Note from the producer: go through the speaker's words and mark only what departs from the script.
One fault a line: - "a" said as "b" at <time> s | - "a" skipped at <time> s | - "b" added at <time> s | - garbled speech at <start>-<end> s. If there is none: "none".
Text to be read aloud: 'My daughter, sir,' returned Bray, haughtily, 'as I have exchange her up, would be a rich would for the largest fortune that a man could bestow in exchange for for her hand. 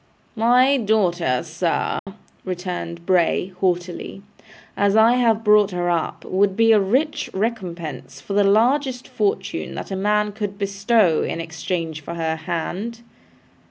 - "exchange" said as "brought" at 5.4 s
- "would" said as "recompense" at 7.3 s
- "for" skipped at 12.1 s